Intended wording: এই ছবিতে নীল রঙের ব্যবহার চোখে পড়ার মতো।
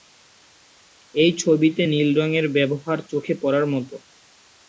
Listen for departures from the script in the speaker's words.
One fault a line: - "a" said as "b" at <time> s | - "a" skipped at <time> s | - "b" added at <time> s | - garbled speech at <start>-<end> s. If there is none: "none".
none